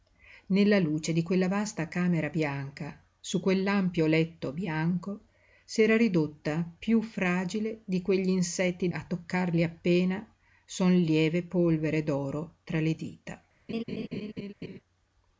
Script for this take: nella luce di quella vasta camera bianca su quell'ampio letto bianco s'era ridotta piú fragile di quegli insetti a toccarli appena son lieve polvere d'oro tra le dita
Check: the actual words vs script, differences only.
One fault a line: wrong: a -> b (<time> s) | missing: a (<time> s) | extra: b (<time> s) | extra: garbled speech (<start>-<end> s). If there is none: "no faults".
no faults